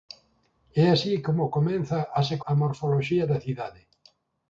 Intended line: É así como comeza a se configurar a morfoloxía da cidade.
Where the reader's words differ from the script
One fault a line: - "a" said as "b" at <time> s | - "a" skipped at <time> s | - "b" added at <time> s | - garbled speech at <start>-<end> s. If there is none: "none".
- "configurar" skipped at 2.4 s